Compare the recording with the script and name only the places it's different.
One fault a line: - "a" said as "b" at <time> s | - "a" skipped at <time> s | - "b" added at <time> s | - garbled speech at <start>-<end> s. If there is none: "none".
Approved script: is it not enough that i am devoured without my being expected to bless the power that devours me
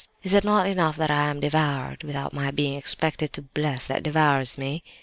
- "the power" skipped at 3.9 s